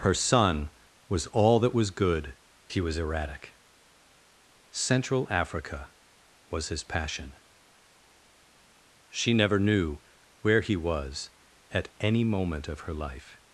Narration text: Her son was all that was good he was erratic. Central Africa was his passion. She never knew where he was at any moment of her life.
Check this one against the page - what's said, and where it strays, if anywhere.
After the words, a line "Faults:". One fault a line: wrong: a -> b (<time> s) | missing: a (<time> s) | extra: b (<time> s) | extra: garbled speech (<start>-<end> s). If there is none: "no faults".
Her son was all that was good he was erratic. Central Africa was his passion. She never knew where he was at any moment of her life.
Faults:
no faults